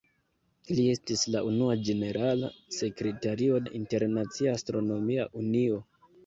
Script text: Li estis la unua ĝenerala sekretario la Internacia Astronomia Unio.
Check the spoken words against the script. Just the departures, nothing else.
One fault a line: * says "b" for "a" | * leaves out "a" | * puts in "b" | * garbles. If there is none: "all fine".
all fine